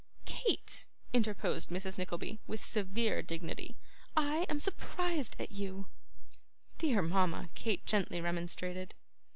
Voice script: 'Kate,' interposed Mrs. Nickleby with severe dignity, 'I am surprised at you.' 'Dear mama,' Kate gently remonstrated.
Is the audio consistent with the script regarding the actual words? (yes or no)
yes